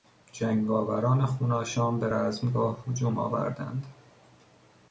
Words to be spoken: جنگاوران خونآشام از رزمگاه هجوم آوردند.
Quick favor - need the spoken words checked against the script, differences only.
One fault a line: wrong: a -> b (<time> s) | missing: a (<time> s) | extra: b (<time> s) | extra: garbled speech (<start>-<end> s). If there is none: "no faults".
wrong: از -> به (2.0 s)